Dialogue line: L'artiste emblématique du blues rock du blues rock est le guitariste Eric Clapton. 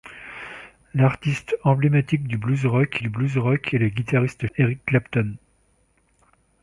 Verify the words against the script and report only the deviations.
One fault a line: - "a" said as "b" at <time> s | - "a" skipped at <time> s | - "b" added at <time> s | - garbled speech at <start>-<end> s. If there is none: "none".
none